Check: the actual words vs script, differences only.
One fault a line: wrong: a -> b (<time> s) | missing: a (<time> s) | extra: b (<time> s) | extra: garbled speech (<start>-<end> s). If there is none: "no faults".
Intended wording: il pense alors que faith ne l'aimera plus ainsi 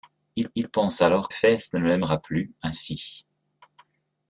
extra: il (0.5 s)
missing: que (1.3 s)